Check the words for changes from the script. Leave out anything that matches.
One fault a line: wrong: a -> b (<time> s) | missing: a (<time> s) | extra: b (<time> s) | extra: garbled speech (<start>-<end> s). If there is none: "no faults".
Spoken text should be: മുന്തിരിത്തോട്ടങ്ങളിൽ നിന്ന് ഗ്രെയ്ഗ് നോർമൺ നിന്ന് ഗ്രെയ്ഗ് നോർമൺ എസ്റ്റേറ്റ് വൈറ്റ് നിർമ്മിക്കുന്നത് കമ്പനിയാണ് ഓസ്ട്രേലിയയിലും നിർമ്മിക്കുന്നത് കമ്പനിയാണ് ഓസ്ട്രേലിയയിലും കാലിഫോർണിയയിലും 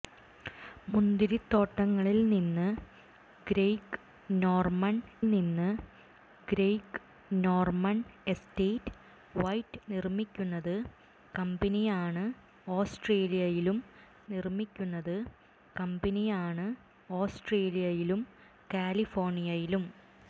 no faults